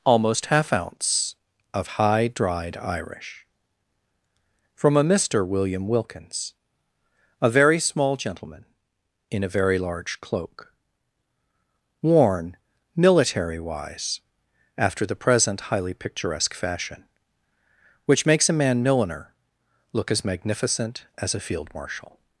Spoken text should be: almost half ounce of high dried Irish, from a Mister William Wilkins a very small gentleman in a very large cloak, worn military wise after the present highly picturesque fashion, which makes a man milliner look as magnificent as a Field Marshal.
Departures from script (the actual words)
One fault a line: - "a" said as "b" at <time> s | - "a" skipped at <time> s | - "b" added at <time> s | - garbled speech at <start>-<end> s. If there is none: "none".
none